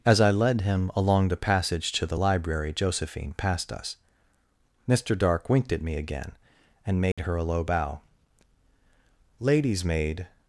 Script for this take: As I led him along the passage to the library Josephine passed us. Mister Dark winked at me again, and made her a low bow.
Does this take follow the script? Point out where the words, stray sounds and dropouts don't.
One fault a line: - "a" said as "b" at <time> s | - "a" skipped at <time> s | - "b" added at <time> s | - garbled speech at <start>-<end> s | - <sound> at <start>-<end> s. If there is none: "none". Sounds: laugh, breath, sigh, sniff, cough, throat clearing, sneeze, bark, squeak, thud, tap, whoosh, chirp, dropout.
- dropout at 7.1-7.2 s
- "Lady's maid" added at 9.4 s